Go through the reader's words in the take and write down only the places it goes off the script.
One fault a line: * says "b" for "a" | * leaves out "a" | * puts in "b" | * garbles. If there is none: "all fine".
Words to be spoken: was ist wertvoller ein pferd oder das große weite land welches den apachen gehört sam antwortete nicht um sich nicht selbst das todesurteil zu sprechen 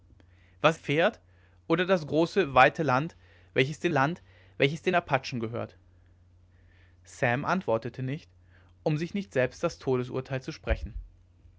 * leaves out "ist wertvoller ein"
* puts in "land welches den"